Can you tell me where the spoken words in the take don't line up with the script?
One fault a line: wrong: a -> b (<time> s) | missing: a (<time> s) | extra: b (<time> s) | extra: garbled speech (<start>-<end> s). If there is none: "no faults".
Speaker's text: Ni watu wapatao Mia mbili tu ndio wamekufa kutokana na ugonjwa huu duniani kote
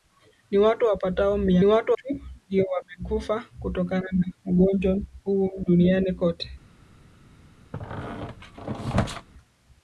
wrong: mbili -> watu (1.6 s)